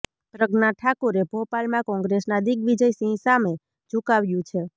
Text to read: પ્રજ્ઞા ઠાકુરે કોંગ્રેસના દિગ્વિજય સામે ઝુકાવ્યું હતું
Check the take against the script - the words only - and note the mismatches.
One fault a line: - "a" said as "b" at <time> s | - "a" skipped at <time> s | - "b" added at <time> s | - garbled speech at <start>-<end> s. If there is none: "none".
- "ભોપાલમાં" added at 1.3 s
- "સિંહ" added at 2.9 s
- "હતું" said as "છે" at 4.5 s